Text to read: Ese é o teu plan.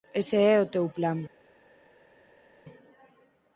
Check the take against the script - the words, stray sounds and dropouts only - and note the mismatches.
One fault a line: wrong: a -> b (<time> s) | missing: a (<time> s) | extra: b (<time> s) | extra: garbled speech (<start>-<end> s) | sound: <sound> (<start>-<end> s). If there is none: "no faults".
no faults